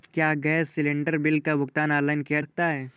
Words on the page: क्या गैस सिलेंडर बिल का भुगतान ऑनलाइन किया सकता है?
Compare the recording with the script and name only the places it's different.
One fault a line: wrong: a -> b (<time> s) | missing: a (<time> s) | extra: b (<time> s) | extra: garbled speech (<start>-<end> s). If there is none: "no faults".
no faults